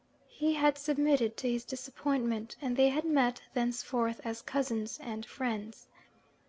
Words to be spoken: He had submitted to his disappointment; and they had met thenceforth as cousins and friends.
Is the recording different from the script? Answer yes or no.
no